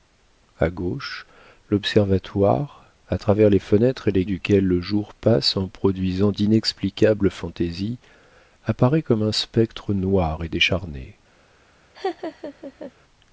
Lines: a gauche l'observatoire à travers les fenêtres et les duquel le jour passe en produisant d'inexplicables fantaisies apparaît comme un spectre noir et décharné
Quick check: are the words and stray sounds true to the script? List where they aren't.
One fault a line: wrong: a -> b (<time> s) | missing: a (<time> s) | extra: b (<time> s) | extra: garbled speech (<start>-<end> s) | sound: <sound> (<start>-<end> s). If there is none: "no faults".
sound: laugh (11.9-12.9 s)